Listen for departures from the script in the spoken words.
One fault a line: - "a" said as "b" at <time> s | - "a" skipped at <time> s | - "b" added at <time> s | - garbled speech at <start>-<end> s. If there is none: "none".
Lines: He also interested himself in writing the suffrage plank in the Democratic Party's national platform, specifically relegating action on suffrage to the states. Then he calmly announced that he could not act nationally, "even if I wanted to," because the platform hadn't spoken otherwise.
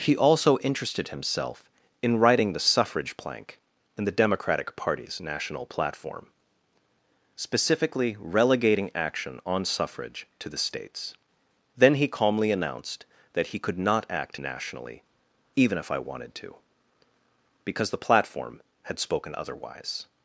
- "hadn't" said as "had" at 18.8 s